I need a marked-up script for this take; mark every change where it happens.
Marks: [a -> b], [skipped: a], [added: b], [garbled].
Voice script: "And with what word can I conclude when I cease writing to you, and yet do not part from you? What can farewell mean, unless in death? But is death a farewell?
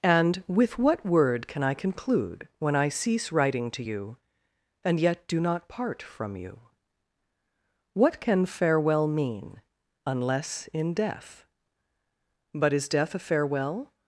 "And with what word can I conclude when I cease writing to you, and yet do not part from you? What can farewell mean, unless in death? But is death a farewell?